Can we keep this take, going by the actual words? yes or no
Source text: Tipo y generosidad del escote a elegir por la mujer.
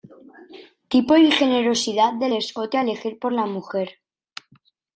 yes